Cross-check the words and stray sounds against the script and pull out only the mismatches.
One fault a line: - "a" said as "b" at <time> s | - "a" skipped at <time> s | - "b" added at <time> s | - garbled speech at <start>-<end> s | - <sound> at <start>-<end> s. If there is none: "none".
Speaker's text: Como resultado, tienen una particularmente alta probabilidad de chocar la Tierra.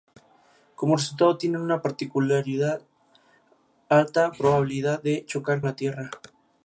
none